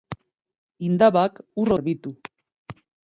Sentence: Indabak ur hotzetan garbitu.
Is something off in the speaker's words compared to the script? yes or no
yes